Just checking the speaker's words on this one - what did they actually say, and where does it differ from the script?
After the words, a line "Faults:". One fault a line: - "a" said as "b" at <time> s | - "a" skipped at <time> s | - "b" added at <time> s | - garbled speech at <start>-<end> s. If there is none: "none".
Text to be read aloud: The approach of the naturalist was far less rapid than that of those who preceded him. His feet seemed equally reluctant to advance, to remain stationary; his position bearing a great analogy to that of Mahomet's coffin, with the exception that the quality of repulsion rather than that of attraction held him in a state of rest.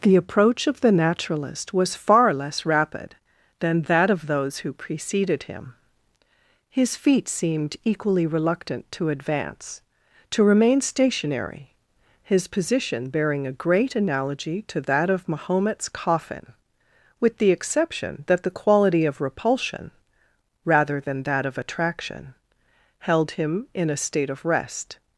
The approach of the naturalist was far less rapid than that of those who preceded him. His feet seemed equally reluctant to advance, to remain stationary; his position bearing a great analogy to that of Mahomet's coffin, with the exception that the quality of repulsion rather than that of attraction held him in a state of rest.
Faults:
none